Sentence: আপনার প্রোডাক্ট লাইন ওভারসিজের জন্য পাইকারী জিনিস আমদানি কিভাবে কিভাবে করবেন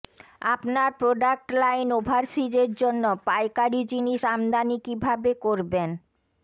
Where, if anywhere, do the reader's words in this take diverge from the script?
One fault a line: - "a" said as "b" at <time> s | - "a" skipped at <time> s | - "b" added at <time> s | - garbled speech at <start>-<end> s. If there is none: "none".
- "কিভাবে" skipped at 5.3 s